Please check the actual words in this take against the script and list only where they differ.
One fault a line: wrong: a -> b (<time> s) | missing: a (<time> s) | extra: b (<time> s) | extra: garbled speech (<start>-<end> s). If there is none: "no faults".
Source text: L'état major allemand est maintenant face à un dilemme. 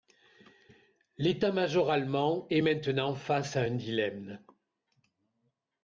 no faults